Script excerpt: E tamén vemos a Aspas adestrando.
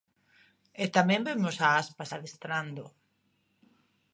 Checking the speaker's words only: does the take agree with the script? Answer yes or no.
yes